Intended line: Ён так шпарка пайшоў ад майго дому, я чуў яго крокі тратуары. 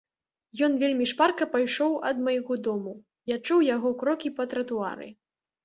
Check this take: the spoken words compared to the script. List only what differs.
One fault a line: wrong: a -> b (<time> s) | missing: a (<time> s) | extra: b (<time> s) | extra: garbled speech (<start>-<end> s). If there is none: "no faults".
wrong: так -> вельмі (0.8 s)
extra: па (4.4 s)